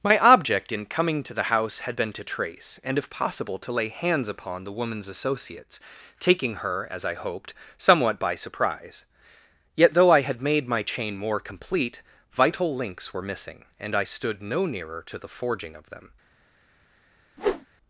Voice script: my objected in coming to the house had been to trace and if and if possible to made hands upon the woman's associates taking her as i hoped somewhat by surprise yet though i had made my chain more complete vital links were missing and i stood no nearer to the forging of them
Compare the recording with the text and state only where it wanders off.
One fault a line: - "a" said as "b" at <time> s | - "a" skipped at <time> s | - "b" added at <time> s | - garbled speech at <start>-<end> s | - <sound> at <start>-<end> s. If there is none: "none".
- "objected" said as "object" at 0.2 s
- "and if" skipped at 3.1 s
- "made" said as "lay" at 3.7 s
- whoosh at 17.4-17.7 s